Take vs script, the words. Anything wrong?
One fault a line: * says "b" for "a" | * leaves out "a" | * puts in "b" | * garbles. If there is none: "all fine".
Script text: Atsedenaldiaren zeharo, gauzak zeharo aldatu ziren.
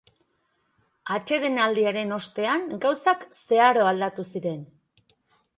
* says "ostean" for "zeharo"